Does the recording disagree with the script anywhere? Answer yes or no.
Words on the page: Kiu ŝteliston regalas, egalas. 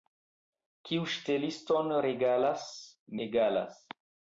no